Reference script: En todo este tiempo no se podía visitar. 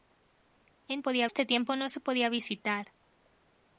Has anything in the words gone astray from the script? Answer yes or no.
yes